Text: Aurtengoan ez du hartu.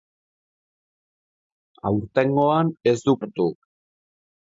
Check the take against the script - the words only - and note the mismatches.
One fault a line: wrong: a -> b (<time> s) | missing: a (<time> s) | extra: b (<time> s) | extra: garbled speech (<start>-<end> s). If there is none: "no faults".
no faults